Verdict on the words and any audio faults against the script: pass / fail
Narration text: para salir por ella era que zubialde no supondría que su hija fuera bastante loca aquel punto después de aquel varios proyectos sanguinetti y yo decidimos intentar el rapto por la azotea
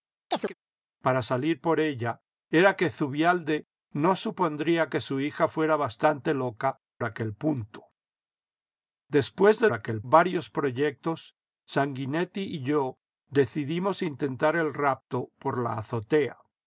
fail